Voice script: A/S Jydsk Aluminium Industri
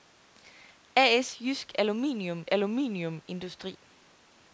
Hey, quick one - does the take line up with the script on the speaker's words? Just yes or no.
no